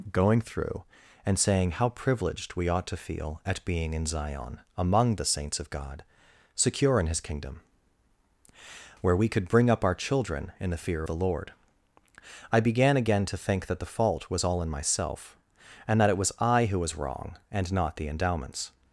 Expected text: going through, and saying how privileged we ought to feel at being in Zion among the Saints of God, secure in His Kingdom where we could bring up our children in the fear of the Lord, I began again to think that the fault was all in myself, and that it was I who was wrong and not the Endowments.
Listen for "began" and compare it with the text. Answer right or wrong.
right